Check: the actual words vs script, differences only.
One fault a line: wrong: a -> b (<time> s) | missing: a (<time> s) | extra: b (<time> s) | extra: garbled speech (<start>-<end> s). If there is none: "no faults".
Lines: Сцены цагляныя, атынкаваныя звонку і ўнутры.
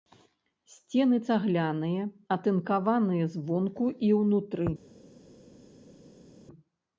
no faults